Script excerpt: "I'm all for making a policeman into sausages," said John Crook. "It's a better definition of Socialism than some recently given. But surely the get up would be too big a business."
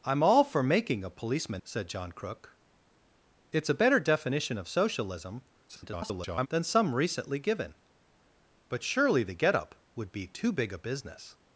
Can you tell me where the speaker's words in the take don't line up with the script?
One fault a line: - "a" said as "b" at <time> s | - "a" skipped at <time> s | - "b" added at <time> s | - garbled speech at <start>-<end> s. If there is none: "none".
- "into sausages" skipped at 1.6 s
- garbled speech at 5.7-6.5 s